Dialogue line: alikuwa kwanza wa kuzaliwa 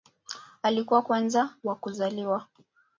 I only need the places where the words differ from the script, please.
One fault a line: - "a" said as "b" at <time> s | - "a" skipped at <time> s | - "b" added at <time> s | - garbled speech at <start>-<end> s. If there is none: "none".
none